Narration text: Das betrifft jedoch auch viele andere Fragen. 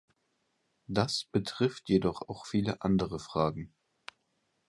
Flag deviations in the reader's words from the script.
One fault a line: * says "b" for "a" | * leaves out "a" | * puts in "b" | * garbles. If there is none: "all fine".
all fine